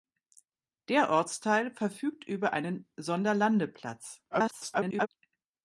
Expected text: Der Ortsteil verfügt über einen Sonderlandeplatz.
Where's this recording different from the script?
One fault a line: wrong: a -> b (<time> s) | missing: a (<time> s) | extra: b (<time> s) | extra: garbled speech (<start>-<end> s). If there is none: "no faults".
extra: garbled speech (4.3-5.1 s)